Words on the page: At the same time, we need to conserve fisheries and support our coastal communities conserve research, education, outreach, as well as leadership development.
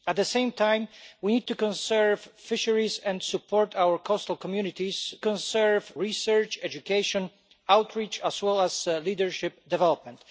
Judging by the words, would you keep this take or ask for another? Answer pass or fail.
pass